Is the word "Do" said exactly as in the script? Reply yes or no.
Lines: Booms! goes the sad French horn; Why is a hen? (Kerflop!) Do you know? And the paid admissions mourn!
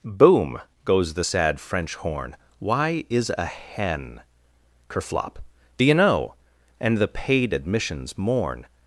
yes